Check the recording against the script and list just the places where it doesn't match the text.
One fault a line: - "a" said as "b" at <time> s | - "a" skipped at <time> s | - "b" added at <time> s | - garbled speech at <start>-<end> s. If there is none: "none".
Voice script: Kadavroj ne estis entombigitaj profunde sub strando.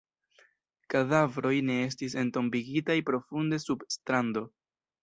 none